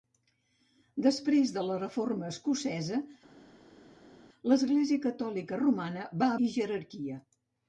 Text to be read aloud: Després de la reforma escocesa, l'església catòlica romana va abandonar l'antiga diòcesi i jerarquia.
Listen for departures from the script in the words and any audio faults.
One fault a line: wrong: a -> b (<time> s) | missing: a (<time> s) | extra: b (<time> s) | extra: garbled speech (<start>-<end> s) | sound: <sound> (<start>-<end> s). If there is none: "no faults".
missing: abandonar l'antiga diòcesi (6.3 s)